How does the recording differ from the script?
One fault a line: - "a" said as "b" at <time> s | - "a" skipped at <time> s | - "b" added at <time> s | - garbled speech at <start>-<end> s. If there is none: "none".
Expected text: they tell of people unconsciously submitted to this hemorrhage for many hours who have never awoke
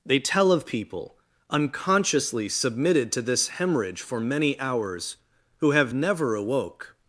none